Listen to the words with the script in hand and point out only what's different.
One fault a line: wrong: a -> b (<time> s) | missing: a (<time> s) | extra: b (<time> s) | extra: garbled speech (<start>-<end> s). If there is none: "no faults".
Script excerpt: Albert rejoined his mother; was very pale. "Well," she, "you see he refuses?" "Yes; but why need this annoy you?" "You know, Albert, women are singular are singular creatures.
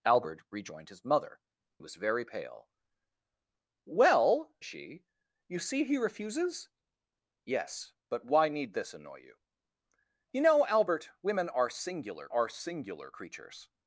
no faults